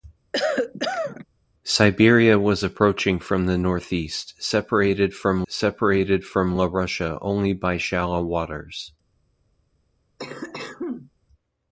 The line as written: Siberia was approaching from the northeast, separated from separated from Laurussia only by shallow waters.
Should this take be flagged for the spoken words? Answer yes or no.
no